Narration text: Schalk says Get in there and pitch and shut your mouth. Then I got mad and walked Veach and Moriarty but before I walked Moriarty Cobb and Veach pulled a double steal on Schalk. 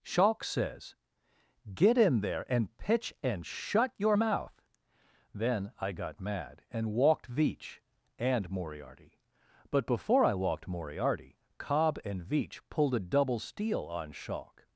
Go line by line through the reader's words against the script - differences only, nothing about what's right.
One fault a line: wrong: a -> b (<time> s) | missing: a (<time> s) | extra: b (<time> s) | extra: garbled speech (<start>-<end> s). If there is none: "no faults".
no faults